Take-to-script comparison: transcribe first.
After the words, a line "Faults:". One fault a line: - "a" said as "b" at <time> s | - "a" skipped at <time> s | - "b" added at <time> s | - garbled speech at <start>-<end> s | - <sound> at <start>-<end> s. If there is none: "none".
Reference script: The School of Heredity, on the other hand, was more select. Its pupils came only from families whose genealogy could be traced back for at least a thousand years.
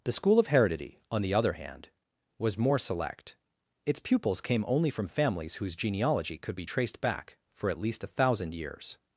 The School of Heredity, on the other hand, was more select. Its pupils came only from families whose genealogy could be traced back for at least a thousand years.
Faults:
none